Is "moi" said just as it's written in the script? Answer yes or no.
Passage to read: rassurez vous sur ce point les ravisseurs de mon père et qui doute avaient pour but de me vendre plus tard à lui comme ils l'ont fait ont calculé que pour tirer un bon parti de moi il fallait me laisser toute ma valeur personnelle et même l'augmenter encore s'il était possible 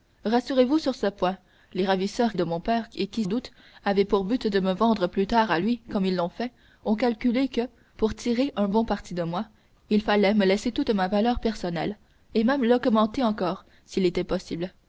yes